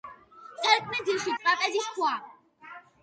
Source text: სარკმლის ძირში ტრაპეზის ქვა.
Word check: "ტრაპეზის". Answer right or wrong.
right